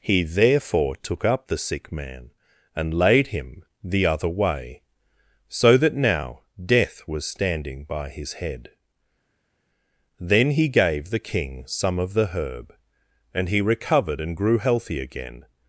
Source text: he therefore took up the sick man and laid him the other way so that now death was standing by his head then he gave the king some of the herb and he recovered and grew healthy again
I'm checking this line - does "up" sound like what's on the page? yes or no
yes